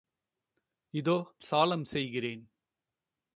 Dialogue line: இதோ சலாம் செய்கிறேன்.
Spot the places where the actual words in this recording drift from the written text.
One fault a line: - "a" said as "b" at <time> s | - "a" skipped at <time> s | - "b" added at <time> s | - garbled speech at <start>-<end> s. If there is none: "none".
none